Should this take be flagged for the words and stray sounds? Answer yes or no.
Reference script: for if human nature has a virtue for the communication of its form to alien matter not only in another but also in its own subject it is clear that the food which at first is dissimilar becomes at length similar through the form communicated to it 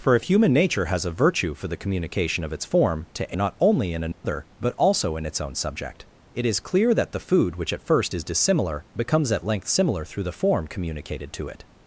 yes